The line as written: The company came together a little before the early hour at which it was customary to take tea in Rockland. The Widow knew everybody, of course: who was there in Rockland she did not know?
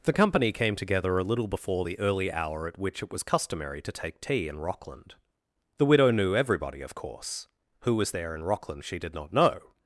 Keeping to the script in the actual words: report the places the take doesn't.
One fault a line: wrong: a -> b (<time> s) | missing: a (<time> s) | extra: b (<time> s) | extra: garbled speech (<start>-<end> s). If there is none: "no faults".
no faults